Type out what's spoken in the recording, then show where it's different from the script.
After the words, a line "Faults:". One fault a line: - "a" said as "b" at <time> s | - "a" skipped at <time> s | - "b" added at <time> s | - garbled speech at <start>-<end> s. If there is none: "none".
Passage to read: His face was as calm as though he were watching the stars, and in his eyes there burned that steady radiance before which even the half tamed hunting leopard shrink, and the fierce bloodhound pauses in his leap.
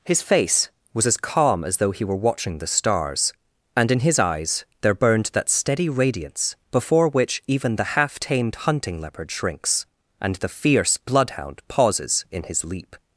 His face was as calm as though he were watching the stars, and in his eyes there burned that steady radiance before which even the half tamed hunting leopard shrinks, and the fierce bloodhound pauses in his leap.
Faults:
- "shrink" said as "shrinks" at 9.3 s